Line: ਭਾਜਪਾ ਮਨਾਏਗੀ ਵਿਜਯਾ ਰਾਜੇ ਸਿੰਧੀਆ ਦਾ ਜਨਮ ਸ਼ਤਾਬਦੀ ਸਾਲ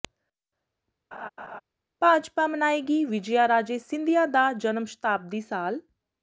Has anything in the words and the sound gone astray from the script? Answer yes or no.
yes